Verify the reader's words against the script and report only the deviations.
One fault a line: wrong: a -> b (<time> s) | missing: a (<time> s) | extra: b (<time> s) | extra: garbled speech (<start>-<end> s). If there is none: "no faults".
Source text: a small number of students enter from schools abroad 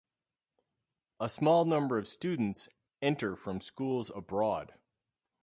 no faults